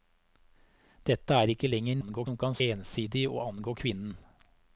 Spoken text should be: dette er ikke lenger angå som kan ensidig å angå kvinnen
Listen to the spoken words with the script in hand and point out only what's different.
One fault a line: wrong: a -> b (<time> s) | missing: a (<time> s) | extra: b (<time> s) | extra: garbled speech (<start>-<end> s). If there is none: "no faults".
no faults